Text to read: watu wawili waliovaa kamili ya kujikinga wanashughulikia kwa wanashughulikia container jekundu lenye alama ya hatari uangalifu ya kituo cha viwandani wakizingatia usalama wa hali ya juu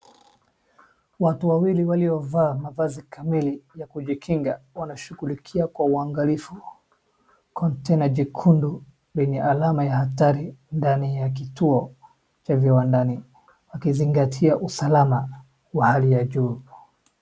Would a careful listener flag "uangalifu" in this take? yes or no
yes